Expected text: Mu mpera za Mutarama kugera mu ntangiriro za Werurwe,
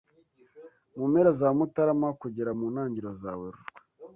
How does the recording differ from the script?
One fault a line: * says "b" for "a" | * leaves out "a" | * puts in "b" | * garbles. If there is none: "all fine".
all fine